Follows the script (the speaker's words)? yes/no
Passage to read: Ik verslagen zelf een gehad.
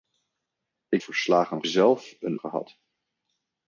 yes